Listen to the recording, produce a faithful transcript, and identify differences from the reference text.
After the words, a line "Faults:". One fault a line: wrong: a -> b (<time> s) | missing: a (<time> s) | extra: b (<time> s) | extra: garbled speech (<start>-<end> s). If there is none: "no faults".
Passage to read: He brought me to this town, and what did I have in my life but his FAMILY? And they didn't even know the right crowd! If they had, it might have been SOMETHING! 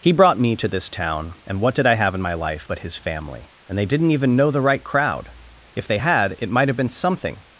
He brought me to this town, and what did I have in my life but his FAMILY? And they didn't even know the right crowd! If they had, it might have been SOMETHING!
Faults:
no faults